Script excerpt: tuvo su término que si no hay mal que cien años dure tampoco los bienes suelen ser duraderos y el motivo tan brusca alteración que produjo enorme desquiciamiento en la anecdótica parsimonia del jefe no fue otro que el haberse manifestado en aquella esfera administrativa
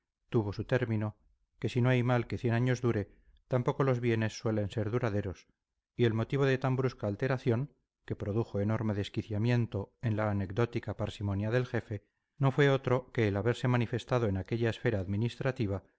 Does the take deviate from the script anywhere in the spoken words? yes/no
yes